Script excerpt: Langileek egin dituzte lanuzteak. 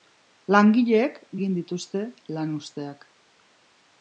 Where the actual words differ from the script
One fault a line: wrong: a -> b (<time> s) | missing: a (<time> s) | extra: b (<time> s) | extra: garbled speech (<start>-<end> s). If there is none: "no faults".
no faults